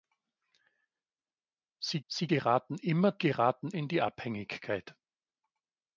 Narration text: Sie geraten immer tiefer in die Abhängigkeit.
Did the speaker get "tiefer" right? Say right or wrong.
wrong